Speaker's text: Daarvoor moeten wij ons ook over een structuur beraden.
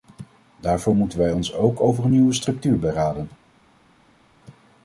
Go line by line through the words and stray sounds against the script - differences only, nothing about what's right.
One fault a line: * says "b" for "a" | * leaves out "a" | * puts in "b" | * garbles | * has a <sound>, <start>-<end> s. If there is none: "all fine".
* puts in "nieuwe"